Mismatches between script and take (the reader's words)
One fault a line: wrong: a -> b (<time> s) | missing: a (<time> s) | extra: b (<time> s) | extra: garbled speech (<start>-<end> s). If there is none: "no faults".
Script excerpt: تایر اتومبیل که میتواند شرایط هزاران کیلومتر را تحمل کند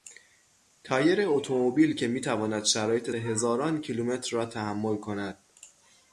no faults